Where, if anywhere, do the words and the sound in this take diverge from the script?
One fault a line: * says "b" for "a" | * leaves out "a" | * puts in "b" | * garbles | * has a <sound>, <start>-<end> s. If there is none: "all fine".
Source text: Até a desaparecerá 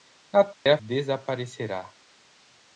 * has a dropout, 0.5-0.7 s